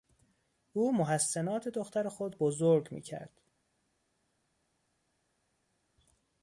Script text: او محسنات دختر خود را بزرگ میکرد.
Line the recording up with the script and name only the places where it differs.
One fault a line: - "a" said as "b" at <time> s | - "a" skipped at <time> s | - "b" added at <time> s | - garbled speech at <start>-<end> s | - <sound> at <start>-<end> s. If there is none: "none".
- "را" skipped at 2.4 s